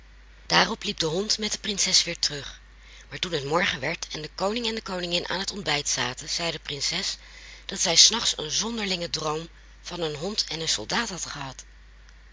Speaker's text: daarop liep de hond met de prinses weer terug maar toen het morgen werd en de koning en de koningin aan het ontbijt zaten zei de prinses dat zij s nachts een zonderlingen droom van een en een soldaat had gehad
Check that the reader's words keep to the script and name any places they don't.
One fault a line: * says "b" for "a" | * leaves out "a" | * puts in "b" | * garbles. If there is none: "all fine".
* puts in "hond"